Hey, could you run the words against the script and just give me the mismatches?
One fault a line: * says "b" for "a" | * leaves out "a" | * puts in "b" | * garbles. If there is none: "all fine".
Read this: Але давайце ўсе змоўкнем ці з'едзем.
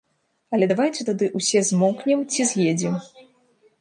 * puts in "тады"